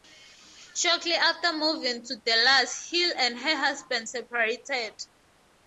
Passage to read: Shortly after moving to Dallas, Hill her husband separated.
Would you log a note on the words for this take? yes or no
yes